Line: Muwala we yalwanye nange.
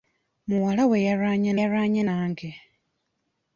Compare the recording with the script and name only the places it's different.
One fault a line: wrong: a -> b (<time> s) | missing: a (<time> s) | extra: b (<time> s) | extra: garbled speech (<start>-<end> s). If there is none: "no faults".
extra: yalwanye (1.6 s)